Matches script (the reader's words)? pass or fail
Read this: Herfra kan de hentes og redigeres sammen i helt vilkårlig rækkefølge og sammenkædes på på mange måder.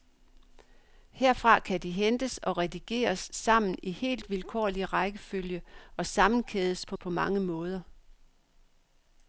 pass